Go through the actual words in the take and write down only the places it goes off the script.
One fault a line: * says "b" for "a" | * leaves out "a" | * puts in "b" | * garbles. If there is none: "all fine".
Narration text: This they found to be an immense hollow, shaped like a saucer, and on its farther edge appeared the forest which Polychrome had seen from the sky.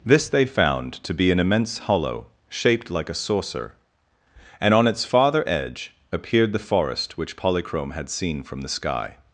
all fine